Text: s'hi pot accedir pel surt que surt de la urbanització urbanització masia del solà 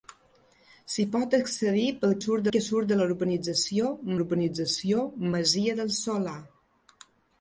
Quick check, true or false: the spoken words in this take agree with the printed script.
true